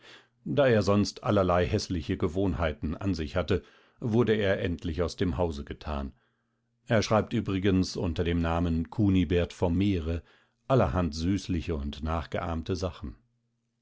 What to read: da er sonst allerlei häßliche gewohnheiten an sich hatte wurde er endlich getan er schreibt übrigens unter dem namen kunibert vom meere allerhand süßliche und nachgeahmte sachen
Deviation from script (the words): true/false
true